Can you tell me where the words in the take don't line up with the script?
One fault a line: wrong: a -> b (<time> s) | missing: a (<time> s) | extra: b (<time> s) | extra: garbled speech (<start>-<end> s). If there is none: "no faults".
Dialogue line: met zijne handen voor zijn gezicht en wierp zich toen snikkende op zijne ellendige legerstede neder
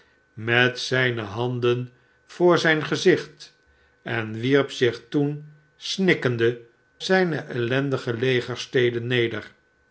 missing: op (6.6 s)